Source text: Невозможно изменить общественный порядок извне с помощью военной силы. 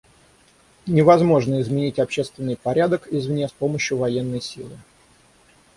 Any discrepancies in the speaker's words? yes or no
no